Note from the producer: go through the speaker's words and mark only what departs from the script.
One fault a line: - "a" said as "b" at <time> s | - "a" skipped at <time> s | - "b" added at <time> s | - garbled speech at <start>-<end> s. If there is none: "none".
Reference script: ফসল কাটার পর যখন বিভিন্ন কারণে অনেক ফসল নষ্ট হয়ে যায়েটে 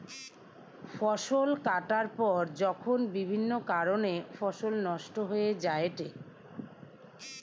- "অনেক" skipped at 4.1 s